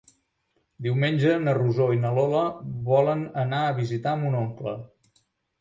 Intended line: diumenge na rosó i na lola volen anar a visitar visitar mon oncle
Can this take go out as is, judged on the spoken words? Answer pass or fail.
fail